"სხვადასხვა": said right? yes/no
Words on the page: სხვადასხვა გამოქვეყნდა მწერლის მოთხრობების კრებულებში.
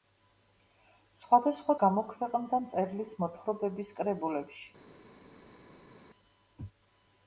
yes